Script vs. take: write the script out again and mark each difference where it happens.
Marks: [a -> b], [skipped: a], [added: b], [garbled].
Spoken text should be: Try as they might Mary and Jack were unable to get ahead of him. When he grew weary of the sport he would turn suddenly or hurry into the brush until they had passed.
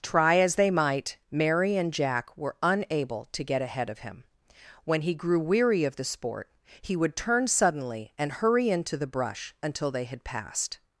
Try as they might Mary and Jack were unable to get ahead of him. When he grew weary of the sport he would turn suddenly [or -> and] hurry into the brush until they had passed.